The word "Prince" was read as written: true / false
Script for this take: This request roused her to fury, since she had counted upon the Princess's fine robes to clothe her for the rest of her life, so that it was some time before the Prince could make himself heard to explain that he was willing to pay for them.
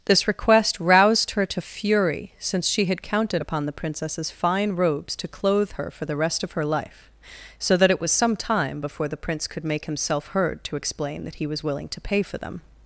true